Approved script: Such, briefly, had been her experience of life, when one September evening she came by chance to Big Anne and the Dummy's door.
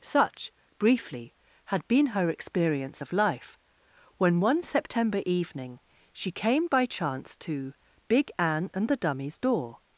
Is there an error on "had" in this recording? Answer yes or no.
no